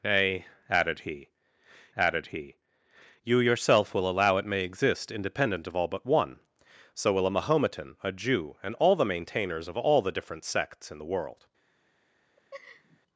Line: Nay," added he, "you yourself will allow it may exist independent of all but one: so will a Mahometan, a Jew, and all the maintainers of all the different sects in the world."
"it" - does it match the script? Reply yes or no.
yes